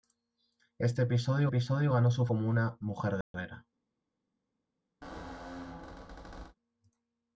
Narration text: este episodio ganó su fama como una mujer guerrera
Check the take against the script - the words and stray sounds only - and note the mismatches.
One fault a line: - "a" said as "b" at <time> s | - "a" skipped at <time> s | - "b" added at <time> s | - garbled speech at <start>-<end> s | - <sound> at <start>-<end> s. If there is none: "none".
- "episodio" added at 1.5 s
- "fama" skipped at 2.3 s
- dropout at 3.2-3.3 s
- squeak at 5.0-6.6 s